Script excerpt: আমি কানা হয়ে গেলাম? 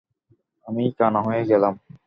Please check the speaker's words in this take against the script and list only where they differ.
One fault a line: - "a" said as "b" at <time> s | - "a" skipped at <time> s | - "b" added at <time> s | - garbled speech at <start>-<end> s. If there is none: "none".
none